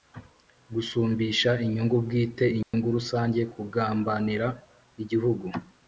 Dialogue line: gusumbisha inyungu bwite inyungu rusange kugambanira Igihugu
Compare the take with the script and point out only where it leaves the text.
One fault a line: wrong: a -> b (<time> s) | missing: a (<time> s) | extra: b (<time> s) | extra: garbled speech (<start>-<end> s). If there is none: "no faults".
no faults